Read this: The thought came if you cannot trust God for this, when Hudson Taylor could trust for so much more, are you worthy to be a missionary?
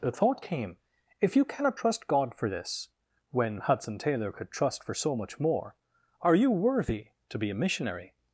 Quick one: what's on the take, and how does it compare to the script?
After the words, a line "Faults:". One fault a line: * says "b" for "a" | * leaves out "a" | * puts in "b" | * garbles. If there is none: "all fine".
The thought came if you cannot trust God for this, when Hudson Taylor could trust for so much more, are you worthy to be a missionary?
Faults:
all fine